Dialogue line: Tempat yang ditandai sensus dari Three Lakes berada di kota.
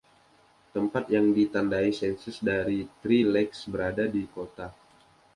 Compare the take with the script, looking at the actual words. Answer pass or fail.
pass